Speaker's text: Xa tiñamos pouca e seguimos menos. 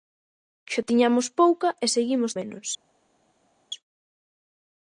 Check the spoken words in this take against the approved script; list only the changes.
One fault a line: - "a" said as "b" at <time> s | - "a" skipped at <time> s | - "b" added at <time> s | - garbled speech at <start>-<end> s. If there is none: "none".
none